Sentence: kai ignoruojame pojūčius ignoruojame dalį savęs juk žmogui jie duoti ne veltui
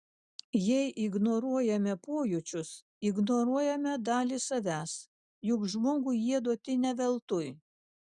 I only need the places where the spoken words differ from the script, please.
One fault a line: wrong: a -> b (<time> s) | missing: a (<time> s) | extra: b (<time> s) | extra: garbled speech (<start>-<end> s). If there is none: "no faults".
wrong: kai -> jei (0.7 s)